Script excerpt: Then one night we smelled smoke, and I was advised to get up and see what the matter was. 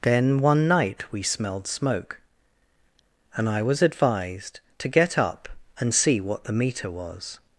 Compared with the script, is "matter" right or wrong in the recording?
wrong